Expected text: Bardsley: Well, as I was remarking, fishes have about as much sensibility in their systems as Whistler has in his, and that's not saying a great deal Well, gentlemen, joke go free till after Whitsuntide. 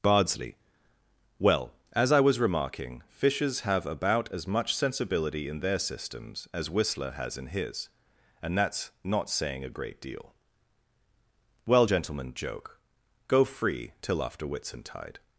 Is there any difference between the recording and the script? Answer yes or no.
no